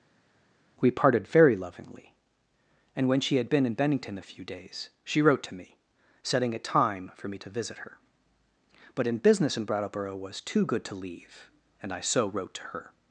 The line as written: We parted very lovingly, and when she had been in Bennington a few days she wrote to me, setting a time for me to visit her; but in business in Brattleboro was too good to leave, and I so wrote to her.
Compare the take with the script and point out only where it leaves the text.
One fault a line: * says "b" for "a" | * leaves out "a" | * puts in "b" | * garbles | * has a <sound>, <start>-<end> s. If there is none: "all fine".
all fine